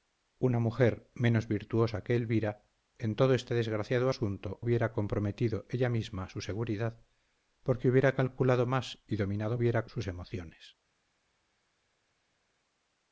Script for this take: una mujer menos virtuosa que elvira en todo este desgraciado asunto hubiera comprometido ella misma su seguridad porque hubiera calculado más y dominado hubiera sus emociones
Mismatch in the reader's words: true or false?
false